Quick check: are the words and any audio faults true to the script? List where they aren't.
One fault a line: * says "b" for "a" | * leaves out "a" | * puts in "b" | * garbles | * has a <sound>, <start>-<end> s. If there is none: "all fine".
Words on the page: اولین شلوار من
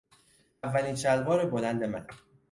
* puts in "بلند"